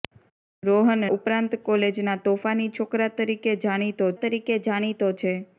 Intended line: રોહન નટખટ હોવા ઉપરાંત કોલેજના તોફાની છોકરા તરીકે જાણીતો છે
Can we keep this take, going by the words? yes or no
no